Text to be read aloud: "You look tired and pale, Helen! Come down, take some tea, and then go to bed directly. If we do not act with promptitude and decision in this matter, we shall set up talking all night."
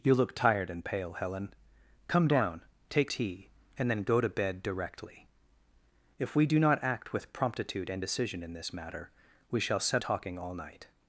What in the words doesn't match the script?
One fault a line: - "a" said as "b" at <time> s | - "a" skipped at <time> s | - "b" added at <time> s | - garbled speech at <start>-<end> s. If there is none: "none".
- "some" skipped at 3.1 s
- "up" skipped at 10.0 s